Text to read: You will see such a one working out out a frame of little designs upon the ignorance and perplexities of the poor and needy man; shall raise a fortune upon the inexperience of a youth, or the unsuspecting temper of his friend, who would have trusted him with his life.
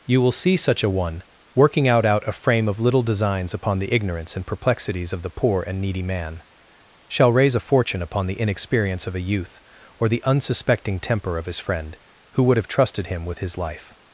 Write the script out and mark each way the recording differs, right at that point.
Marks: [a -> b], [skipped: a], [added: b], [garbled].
You will see such a one working out out a frame of little designs upon the ignorance and perplexities of the poor and needy man; shall raise a fortune upon the inexperience of a youth, or the unsuspecting temper of his friend, who would have trusted him with his life.